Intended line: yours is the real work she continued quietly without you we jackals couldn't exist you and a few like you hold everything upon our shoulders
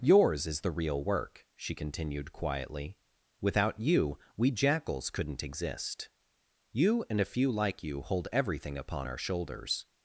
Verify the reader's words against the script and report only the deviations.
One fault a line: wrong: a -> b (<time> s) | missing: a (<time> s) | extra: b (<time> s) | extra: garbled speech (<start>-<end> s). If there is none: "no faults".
no faults